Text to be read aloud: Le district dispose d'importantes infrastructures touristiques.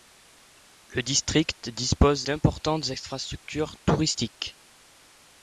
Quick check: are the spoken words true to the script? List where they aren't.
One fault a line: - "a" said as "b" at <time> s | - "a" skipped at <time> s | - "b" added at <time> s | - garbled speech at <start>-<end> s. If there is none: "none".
none